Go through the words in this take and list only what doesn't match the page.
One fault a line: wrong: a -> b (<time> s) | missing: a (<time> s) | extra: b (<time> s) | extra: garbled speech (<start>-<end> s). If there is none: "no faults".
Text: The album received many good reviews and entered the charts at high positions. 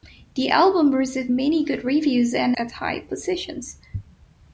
missing: entered the charts (2.6 s)